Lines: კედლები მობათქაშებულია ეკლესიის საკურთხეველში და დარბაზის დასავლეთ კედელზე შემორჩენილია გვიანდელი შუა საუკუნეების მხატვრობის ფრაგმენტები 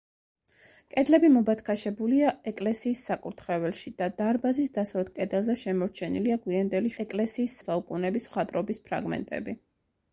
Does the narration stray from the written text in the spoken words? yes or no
yes